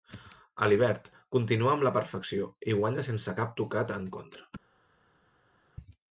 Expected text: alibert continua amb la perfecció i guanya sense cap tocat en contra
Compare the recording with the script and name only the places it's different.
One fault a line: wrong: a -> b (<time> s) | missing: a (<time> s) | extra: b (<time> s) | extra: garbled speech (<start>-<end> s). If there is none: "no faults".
no faults